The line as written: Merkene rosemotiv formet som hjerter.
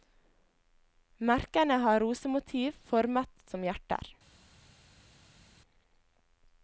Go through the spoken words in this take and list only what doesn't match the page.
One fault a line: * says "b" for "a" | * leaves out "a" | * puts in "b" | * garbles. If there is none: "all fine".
* puts in "har"